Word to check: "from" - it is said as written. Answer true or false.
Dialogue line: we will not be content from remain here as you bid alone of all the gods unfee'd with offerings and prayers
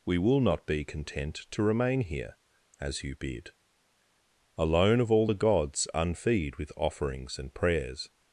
false